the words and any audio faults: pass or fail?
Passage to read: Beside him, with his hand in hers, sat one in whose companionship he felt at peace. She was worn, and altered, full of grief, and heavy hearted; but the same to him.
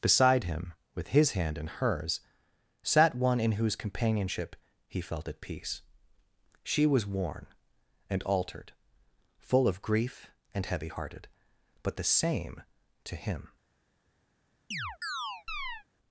fail